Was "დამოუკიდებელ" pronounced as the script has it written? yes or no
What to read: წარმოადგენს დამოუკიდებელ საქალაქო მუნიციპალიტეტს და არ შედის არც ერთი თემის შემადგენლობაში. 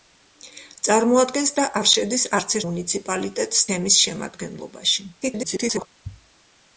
no